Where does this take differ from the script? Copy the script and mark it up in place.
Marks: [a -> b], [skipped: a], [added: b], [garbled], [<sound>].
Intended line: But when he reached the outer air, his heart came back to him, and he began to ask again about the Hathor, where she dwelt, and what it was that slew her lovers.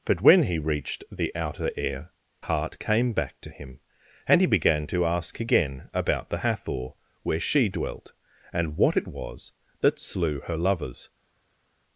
But when he reached the outer air, [skipped: his] heart came back to him, and he began to ask again about the Hathor, where she dwelt, and what it was that slew her lovers.